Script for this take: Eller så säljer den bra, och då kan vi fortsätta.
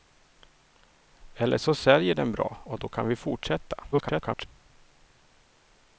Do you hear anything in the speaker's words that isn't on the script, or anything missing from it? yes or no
yes